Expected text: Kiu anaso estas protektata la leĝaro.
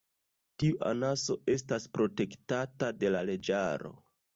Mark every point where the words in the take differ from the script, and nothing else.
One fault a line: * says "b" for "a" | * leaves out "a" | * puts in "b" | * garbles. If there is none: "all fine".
* says "Tiu" for "Kiu"
* puts in "de"